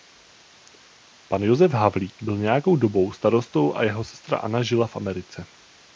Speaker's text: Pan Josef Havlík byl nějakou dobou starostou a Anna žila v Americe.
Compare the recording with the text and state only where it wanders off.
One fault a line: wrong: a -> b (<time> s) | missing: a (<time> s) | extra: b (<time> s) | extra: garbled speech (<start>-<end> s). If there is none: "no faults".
extra: jeho sestra (3.8 s)